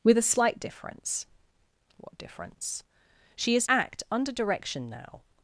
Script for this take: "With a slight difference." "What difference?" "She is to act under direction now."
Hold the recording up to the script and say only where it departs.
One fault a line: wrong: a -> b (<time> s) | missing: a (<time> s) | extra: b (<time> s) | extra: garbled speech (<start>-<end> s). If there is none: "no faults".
missing: to (3.7 s)